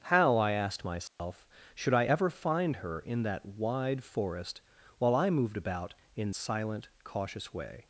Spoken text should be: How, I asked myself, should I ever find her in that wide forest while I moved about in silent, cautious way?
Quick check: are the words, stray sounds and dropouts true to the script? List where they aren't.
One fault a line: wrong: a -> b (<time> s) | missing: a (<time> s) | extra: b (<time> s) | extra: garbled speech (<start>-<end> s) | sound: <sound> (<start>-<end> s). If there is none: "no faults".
sound: dropout (1.1-1.2 s)